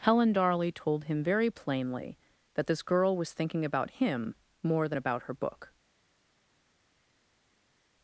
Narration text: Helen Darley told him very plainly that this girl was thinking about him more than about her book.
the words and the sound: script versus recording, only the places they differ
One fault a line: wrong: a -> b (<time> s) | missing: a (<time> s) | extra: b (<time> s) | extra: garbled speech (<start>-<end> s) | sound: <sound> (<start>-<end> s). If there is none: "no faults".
no faults